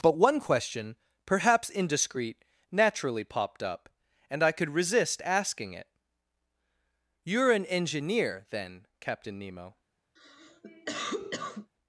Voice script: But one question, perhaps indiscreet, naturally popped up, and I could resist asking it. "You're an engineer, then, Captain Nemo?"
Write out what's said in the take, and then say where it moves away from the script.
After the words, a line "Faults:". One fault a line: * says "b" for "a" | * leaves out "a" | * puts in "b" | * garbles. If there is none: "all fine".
But one question, perhaps indiscreet, naturally popped up, and I could resist asking it. "You're an engineer, then, Captain Nemo?"
Faults:
all fine